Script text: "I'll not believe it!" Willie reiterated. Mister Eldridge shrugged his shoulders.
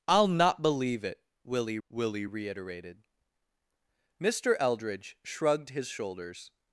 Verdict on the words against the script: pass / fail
fail